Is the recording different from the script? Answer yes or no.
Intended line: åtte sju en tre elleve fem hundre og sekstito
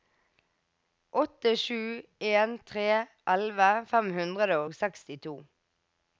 no